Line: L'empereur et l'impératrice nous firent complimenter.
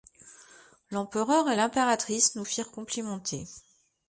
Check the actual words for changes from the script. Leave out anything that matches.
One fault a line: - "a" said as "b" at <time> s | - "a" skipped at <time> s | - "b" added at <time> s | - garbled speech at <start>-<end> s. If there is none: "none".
none